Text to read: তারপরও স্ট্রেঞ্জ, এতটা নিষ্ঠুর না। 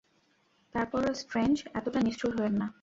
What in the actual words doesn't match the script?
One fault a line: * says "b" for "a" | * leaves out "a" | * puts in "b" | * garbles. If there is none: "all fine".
* puts in "হয়েন"